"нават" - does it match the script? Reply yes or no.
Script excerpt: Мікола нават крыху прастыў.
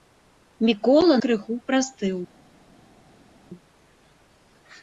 no